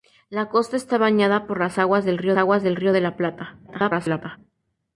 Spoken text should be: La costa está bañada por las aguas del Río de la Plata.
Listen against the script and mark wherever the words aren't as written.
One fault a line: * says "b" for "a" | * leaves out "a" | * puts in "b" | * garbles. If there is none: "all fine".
* puts in "aguas del Río"
* garbles